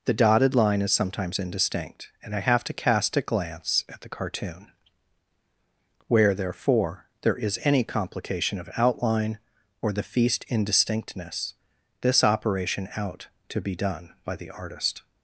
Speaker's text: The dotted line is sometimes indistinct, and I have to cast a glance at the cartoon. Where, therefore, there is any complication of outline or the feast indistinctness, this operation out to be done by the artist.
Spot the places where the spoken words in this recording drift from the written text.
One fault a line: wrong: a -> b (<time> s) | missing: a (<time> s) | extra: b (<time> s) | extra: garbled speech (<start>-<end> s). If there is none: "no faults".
no faults